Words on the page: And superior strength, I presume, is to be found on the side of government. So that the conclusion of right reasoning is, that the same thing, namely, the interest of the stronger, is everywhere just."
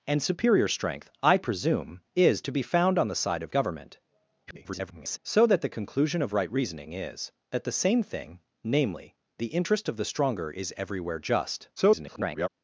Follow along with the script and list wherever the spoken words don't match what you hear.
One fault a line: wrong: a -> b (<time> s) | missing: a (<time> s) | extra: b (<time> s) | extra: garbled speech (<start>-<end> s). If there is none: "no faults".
extra: garbled speech (4.5-5.2 s)
extra: garbled speech (11.8-12.5 s)